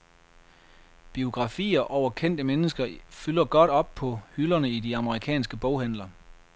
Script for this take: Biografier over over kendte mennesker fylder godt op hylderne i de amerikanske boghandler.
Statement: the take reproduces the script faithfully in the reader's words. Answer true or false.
false